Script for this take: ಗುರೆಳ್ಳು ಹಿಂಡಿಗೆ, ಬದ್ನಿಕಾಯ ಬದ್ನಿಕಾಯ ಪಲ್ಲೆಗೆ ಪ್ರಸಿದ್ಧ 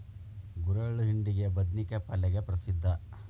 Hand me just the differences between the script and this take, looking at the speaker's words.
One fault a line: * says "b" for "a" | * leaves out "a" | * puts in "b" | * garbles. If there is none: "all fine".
* leaves out "ಬದ್ನಿಕಾಯ"